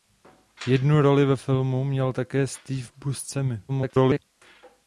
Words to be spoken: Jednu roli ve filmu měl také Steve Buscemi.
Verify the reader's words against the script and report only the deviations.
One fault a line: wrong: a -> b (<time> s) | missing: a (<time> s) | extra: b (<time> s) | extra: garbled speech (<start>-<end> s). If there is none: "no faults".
extra: garbled speech (3.7-4.2 s)